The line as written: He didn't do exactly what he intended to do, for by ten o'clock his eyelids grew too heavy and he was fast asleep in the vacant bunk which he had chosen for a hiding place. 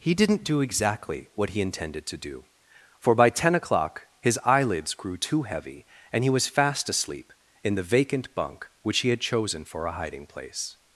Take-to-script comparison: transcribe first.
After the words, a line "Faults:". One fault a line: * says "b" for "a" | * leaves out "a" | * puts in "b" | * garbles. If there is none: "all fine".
He didn't do exactly what he intended to do, for by ten o'clock his eyelids grew too heavy and he was fast asleep in the vacant bunk which he had chosen for a hiding place.
Faults:
all fine